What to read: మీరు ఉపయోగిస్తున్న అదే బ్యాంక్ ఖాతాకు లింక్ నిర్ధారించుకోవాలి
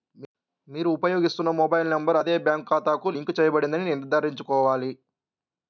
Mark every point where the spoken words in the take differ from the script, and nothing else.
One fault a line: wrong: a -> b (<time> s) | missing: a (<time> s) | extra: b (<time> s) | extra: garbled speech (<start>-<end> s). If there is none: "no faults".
extra: మొబైల్ నంబర్ (1.6 s)
extra: చేయబడిందని (3.4 s)